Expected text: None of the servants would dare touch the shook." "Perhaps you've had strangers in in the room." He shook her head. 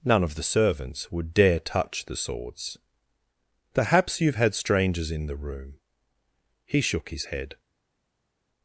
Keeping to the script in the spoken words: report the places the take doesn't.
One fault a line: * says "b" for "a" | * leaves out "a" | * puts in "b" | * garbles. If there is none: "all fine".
* says "swords" for "shook"
* leaves out "in"
* says "his" for "her"